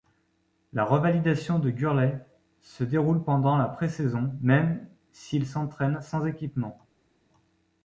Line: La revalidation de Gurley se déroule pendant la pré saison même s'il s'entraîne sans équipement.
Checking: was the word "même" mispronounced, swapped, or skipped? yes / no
no